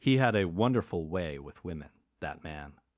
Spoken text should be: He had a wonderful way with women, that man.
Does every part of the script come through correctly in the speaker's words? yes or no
yes